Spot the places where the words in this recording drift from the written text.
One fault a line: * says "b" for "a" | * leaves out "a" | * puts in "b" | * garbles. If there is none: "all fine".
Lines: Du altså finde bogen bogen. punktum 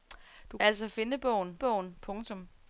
all fine